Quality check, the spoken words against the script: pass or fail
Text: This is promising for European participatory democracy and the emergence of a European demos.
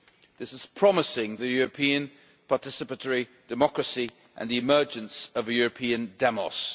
fail